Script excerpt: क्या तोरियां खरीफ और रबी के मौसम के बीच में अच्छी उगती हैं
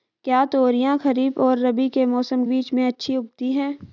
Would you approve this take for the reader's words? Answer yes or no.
no